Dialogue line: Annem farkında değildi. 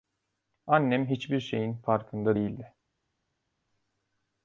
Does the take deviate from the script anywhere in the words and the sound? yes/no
yes